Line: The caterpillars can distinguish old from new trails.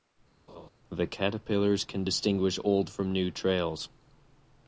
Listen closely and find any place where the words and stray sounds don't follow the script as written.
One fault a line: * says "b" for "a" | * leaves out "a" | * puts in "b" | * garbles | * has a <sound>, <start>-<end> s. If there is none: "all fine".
* has a laugh, 0.5-0.7 s